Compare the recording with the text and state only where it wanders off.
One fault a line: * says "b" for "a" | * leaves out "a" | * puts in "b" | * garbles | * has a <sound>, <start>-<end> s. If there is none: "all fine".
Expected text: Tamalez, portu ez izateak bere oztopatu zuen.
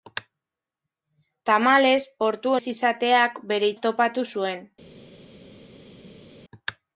all fine